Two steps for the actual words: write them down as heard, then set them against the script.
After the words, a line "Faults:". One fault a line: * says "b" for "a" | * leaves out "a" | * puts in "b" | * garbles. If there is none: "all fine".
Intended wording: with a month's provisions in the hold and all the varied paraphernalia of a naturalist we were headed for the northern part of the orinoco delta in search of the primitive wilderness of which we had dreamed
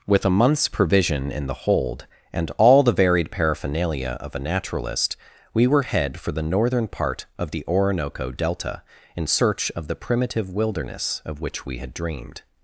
with a month's provision in the hold and all the varied paraphernalia of a naturalist we were head for the northern part of the orinoco delta in search of the primitive wilderness of which we had dreamed
Faults:
* says "provision" for "provisions"
* says "head" for "headed"